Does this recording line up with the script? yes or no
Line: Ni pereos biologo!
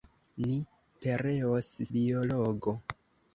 yes